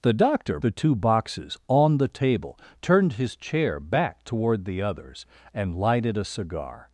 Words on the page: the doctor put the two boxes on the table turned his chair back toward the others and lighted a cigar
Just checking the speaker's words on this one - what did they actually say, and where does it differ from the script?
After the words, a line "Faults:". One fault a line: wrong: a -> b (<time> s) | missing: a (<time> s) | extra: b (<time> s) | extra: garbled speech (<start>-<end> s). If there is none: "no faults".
the doctor the two boxes on the table turned his chair back toward the others and lighted a cigar
Faults:
missing: put (0.6 s)